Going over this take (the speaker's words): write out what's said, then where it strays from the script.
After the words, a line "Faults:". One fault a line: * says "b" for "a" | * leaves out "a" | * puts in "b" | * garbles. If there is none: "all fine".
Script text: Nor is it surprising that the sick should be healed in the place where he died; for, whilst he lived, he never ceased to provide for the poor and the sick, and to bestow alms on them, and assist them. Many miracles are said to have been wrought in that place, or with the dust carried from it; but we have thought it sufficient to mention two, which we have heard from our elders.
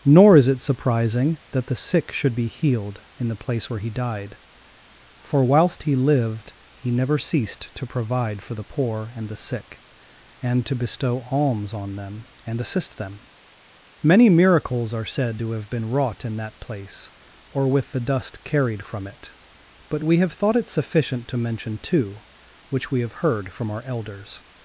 Nor is it surprising that the sick should be healed in the place where he died; for, whilst he lived, he never ceased to provide for the poor and the sick, and to bestow alms on them, and assist them. Many miracles are said to have been wrought in that place, or with the dust carried from it; but we have thought it sufficient to mention two, which we have heard from our elders.
Faults:
all fine